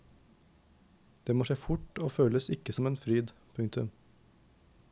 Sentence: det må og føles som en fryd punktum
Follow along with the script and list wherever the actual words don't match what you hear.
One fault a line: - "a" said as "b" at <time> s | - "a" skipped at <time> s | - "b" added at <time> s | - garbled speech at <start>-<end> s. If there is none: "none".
- "skje fort" added at 1.4 s
- "ikke" added at 2.5 s